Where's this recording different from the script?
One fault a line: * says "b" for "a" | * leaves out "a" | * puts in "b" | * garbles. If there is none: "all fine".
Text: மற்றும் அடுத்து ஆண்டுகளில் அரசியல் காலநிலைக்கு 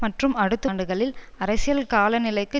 all fine